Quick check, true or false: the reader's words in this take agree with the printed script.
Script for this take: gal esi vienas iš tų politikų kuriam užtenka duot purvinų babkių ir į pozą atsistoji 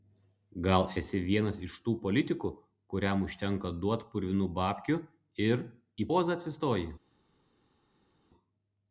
true